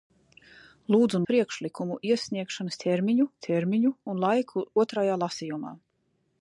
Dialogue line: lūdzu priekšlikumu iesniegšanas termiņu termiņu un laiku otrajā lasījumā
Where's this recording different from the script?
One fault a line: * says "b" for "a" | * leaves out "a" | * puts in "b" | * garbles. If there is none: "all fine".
all fine